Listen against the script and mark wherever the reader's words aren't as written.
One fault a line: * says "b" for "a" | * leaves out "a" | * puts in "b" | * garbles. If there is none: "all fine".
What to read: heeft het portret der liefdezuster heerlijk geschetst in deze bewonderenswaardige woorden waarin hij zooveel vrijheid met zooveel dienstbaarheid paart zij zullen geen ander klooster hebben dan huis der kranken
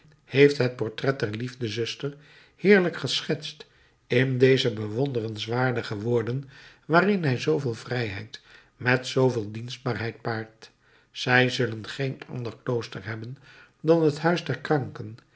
* puts in "het"